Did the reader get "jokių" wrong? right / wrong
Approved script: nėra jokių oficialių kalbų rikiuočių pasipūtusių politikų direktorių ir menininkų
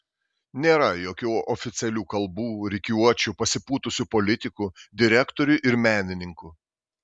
right